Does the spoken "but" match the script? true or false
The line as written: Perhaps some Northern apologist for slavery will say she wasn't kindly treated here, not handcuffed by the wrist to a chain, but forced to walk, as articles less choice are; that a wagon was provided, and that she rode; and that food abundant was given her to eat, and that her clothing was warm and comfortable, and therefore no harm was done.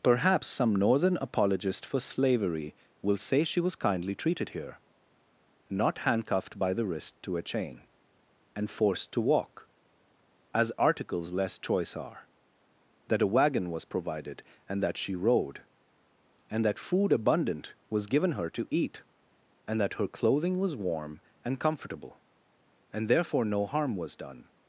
false